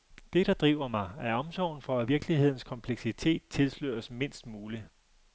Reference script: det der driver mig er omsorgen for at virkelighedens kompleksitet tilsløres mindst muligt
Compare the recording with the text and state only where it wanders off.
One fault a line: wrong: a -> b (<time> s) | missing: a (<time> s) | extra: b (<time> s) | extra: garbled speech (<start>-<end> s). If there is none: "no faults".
no faults